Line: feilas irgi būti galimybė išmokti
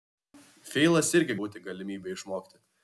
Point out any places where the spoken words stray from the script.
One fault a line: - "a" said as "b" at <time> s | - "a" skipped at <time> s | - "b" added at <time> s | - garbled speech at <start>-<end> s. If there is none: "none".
none